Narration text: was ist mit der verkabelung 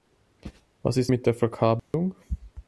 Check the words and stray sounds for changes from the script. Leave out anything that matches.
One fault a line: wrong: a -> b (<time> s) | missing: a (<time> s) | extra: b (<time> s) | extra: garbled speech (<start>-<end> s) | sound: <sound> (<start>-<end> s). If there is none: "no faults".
sound: dropout (1.8-1.9 s)